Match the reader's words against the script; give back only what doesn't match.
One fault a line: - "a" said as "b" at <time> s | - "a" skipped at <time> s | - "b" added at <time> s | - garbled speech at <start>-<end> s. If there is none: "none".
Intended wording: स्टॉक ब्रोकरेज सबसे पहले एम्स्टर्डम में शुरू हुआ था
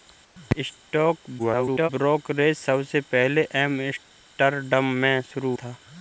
- garbled speech at 1.4-1.9 s
- "हुआ" skipped at 5.5 s